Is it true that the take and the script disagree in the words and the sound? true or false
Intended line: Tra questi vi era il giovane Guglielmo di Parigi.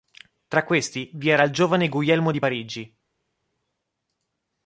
false